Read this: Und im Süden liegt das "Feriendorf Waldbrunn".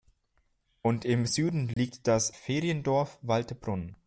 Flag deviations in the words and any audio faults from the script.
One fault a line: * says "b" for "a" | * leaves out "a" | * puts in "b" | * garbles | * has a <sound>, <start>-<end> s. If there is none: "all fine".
* has a dropout, 1.7-1.8 s